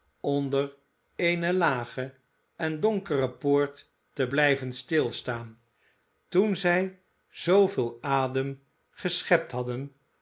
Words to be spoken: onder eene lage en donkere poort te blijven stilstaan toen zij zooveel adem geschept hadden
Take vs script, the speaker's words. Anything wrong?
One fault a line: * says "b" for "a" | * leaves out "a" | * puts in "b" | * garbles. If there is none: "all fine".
all fine